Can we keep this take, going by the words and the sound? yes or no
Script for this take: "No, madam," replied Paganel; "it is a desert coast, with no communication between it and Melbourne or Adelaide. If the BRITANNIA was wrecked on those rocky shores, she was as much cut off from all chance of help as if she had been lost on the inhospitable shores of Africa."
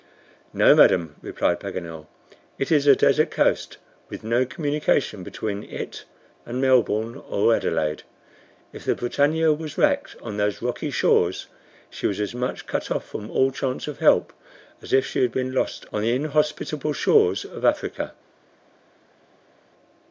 yes